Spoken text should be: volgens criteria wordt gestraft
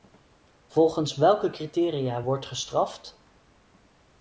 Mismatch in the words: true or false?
true